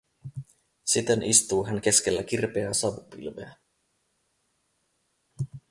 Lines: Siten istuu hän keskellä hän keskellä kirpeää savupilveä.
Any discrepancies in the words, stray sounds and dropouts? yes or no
yes